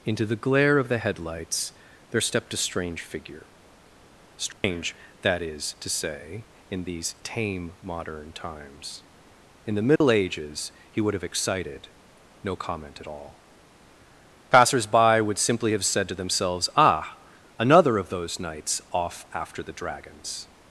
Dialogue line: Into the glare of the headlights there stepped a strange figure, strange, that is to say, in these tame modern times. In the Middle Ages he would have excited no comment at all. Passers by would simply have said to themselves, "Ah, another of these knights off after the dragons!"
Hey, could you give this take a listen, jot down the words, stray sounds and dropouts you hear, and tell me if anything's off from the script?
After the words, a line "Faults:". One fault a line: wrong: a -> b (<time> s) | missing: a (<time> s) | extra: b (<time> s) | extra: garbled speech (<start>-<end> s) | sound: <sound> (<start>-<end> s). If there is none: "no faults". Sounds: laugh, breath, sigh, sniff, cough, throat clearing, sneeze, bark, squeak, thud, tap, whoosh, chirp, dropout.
Into the glare of the headlights there stepped a strange figure, strange, that is to say, in these tame modern times. In the Middle Ages he would have excited no comment at all. Passers by would simply have said to themselves, "Ah, another of those knights off after the dragons!"
Faults:
sound: dropout (4.5-4.6 s)
sound: dropout (10.0-10.0 s)
wrong: these -> those (18.1 s)